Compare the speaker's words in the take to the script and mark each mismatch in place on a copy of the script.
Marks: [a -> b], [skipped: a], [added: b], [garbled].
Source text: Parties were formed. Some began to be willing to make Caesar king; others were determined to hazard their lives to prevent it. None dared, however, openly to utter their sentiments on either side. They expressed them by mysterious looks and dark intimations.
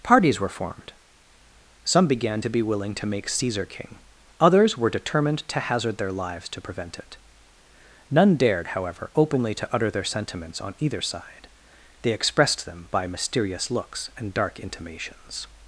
Parties were formed. Some began to be willing to make Caesar king; others were determined to hazard their lives to prevent it. None dared, however, openly to utter their sentiments on either side. They expressed them by mysterious looks and dark intimations.